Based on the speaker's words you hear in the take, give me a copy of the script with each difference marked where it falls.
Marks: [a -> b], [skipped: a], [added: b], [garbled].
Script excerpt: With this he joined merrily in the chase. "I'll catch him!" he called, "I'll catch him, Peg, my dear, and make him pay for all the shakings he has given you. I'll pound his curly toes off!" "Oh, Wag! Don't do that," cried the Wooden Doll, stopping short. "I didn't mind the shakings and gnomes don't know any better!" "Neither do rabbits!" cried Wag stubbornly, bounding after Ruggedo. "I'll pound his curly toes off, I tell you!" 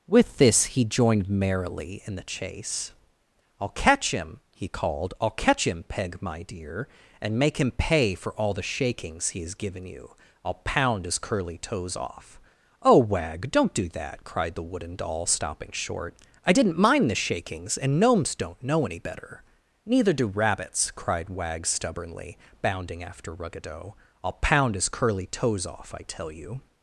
With this he joined merrily in the chase. "I'll catch him!" he called, "I'll catch him, Peg, my dear, and make him pay for all the shakings he has given you. I'll pound his curly toes off!" "Oh, Wag! Don't do that," cried the Wooden Doll, stopping short. "I didn't mind the shakings and gnomes don't know any better!" "Neither do rabbits!" cried Wag stubbornly, bounding after Ruggedo. "I'll pound his curly toes off, I tell you!"